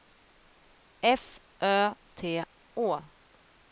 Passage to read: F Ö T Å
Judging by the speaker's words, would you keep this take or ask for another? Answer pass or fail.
pass